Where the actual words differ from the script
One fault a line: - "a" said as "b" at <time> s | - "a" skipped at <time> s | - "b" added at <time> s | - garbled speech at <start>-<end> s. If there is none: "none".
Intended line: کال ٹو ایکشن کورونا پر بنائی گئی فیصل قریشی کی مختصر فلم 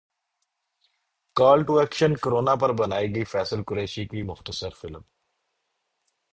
none